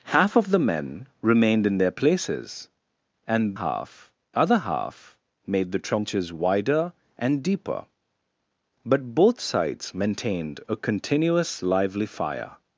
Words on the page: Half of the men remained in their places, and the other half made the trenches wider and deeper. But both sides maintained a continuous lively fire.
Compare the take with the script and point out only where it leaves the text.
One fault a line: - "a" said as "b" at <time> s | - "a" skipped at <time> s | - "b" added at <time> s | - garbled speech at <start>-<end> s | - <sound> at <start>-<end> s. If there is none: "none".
- "the" said as "half" at 3.5 s